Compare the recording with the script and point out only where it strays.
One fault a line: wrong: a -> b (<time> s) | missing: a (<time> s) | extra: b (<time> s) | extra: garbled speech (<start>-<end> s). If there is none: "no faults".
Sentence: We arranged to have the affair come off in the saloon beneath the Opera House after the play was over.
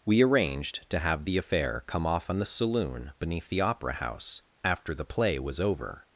wrong: in -> on (2.3 s)